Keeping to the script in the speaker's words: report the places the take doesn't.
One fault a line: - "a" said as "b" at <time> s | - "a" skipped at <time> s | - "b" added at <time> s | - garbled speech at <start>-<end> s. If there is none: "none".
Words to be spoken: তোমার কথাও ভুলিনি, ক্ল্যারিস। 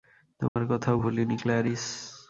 none